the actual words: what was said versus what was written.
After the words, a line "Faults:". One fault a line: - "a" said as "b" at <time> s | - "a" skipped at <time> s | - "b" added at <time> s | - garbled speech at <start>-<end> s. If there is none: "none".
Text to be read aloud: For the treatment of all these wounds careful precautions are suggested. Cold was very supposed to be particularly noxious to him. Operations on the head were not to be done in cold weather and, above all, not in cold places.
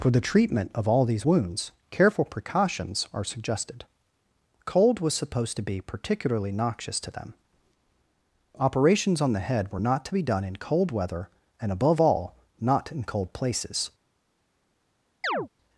For the treatment of all these wounds careful precautions are suggested. Cold was supposed to be particularly noxious to them. Operations on the head were not to be done in cold weather and, above all, not in cold places.
Faults:
- "very" skipped at 5.1 s
- "him" said as "them" at 7.1 s